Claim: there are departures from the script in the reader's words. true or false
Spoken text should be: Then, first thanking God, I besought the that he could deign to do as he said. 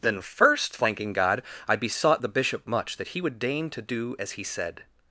true